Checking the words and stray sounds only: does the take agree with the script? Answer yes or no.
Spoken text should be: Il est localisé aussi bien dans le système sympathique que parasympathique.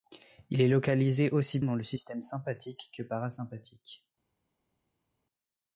no